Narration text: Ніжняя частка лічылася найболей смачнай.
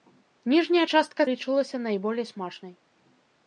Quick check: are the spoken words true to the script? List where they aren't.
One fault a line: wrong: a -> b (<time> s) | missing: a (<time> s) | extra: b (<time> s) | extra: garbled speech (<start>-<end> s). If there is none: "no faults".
no faults